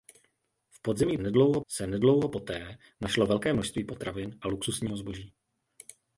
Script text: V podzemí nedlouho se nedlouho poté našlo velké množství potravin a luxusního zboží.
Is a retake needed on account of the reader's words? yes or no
no